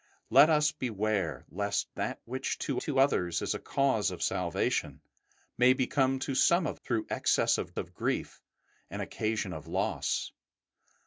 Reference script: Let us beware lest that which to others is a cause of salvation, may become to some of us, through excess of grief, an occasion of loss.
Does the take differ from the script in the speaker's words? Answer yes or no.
yes